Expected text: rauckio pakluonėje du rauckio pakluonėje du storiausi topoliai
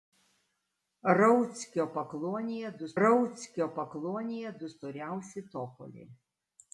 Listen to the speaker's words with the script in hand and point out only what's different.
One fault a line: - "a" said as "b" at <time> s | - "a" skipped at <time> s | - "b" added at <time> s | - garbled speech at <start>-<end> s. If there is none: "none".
none